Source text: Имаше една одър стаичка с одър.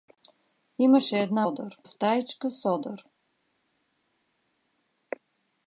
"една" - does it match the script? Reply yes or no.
yes